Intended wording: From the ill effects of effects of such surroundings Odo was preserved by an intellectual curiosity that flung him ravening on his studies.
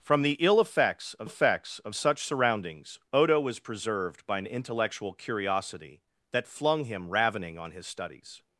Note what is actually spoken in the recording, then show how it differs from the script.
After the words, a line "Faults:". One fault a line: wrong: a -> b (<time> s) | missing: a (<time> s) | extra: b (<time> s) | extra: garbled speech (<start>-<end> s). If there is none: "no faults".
From the ill effects of effects of such surroundings Odo was preserved by an intellectual curiosity that flung him ravening on his studies.
Faults:
no faults